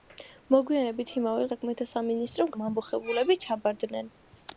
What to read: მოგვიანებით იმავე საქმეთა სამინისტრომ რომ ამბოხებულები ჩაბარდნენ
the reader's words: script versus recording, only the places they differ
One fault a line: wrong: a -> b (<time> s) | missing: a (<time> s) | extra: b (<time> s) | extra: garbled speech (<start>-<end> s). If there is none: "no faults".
no faults